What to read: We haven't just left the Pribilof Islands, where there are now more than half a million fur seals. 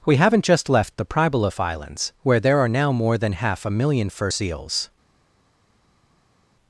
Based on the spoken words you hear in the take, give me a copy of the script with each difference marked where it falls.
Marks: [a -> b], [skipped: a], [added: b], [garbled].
We haven't just left the Pribilof Islands, where there are now more than half a million fur seals.